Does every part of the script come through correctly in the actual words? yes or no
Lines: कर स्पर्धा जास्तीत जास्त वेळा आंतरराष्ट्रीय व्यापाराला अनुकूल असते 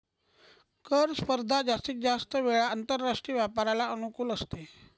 yes